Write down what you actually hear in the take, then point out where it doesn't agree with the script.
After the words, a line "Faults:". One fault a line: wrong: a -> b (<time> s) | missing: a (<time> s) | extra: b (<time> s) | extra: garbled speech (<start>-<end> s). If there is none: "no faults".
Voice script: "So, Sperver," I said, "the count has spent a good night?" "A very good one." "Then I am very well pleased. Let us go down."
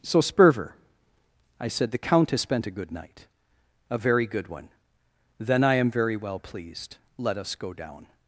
"So, Sperver," I said, "the count has spent a good night?" "A very good one." "Then I am very well pleased. Let us go down."
Faults:
no faults